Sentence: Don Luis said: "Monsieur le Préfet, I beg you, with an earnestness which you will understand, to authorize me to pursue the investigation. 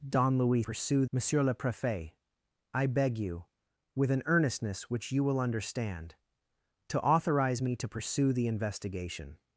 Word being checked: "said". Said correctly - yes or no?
no